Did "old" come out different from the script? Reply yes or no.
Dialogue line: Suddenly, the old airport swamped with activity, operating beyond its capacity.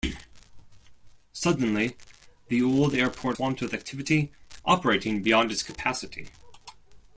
no